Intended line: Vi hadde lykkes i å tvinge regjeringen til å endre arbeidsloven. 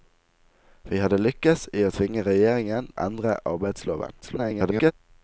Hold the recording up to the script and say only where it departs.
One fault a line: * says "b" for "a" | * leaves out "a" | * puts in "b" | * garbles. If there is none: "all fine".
* leaves out "til"
* garbles